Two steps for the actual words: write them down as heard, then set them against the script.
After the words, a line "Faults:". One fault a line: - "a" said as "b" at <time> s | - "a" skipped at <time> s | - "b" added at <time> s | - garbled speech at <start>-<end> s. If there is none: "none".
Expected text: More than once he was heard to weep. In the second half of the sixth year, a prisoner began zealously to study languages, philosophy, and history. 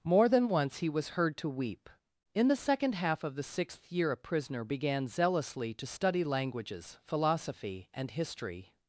More than once he was heard to weep. In the second half of the sixth year, a prisoner began zealously to study languages, philosophy, and history.
Faults:
none